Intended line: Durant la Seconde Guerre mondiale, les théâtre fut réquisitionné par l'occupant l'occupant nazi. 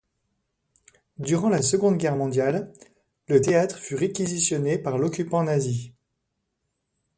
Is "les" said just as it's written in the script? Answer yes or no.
no